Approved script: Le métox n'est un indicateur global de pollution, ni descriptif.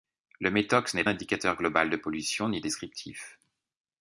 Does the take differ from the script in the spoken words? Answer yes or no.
no